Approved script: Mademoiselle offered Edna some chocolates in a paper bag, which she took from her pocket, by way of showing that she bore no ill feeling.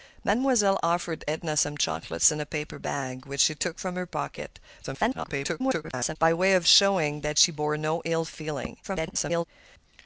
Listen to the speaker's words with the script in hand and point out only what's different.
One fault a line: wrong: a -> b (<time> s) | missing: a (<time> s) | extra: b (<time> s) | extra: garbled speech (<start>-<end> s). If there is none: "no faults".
extra: garbled speech (4.8-6.2 s)
extra: garbled speech (8.8-9.5 s)